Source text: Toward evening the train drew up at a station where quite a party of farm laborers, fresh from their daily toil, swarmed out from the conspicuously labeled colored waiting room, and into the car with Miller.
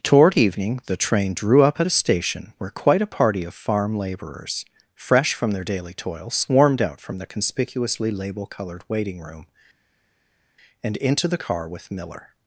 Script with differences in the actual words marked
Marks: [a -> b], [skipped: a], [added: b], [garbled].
Toward evening the train drew up at a station where quite a party of farm laborers, fresh from their daily toil, swarmed out from the conspicuously [labeled -> label] colored waiting room, and into the car with Miller.